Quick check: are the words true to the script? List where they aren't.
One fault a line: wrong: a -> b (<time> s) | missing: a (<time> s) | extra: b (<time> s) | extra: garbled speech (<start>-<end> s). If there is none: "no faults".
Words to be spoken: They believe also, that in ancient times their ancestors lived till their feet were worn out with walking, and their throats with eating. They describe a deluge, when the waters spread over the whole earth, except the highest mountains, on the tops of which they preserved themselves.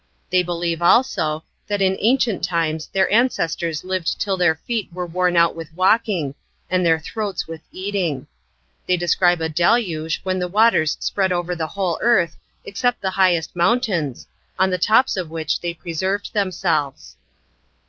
no faults